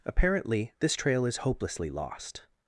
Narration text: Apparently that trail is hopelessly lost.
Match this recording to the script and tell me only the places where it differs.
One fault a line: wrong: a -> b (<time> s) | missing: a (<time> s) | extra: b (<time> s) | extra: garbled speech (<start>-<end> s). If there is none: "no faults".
wrong: that -> this (0.8 s)